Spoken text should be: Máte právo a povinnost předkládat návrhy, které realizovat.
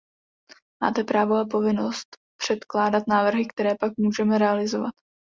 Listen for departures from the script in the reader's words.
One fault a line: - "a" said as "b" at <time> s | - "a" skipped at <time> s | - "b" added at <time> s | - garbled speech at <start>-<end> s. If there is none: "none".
- "pak můžeme" added at 3.8 s